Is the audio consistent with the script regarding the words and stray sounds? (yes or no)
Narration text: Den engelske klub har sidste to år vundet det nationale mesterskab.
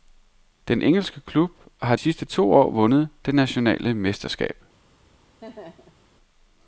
no